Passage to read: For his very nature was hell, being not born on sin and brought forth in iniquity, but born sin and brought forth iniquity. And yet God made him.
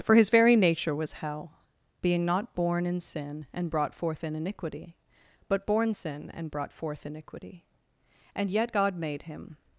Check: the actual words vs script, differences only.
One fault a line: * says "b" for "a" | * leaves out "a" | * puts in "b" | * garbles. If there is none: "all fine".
* says "in" for "on"